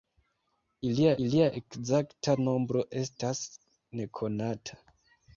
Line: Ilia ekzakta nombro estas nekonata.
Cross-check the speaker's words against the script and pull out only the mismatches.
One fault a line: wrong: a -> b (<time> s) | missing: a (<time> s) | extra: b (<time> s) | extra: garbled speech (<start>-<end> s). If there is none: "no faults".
extra: ilia (1.3 s)